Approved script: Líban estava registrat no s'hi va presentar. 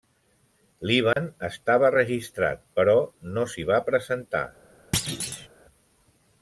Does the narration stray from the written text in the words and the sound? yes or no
yes